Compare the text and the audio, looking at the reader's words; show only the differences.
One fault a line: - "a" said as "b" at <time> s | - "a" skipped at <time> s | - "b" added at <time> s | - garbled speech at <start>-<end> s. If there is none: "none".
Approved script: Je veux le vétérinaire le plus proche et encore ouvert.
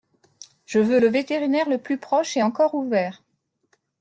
none